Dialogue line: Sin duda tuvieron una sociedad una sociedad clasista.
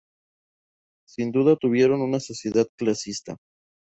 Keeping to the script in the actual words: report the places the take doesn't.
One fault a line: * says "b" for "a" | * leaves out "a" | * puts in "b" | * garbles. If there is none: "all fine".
* leaves out "una sociedad"